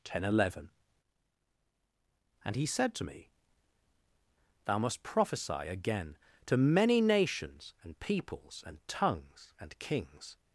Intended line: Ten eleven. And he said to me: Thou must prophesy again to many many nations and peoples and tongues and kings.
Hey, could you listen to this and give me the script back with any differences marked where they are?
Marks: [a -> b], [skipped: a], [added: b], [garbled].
Ten eleven. And he said to me: Thou must prophesy again to many [skipped: many] nations and peoples and tongues and kings.